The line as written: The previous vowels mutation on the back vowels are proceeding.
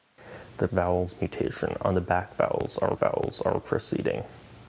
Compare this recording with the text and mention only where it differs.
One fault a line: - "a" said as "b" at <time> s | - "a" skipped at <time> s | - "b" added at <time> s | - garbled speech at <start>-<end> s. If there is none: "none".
- "previous" skipped at 0.7 s
- "vowels are" added at 3.0 s